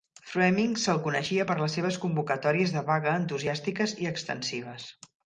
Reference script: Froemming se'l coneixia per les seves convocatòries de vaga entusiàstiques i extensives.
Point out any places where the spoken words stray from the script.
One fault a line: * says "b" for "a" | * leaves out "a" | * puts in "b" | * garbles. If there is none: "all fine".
all fine